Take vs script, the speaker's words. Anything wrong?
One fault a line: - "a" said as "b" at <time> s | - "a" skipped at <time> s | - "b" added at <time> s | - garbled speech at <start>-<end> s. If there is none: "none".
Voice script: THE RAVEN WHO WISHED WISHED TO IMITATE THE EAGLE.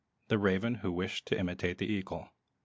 - "WISHED" skipped at 1.3 s